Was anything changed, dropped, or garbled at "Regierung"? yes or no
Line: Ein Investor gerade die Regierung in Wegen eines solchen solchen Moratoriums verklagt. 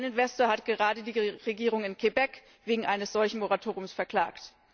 no